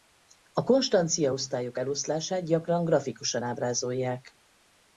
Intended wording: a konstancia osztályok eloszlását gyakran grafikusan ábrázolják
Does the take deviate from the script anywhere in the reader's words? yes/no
no